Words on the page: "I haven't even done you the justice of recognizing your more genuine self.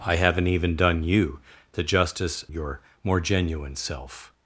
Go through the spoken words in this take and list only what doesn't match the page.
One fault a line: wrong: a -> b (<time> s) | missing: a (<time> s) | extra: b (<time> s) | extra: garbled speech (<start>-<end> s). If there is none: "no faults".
missing: of recognizing (2.4 s)